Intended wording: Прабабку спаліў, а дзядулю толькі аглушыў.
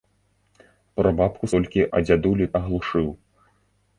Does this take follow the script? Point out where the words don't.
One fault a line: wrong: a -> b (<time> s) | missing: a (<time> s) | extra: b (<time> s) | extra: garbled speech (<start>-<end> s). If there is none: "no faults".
wrong: спаліў -> толькі (1.6 s)
missing: толькі (2.5 s)